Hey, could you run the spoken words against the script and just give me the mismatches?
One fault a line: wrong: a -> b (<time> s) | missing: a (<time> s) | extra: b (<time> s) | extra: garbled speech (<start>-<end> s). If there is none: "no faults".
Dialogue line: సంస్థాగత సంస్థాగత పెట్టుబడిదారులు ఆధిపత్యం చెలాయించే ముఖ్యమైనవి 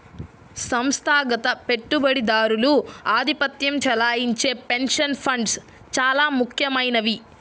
missing: సంస్థాగత (1.5 s)
extra: పెన్షన్ ఫండ్స్ చాలా (4.7 s)